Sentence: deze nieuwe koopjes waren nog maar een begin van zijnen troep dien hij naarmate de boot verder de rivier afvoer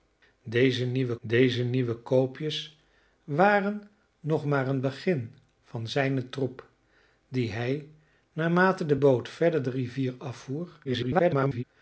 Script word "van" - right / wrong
right